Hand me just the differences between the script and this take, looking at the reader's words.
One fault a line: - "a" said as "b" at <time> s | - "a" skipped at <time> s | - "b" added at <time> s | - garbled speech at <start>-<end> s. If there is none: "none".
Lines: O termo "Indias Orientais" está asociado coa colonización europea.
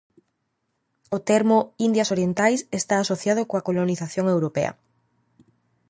none